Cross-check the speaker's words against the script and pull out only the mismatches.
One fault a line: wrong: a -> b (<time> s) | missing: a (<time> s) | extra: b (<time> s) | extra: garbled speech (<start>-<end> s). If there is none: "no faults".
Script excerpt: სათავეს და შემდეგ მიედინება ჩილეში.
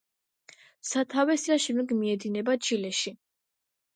no faults